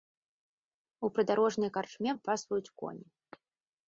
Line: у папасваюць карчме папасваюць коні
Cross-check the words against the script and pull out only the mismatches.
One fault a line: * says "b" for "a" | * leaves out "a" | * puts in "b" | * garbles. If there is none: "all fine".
* says "прыдарожнай" for "папасваюць"